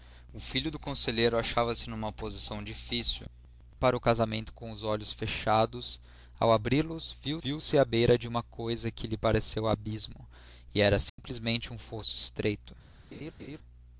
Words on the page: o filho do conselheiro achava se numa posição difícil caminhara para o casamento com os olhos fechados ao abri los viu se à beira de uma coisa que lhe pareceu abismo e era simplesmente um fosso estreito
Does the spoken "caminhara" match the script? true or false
false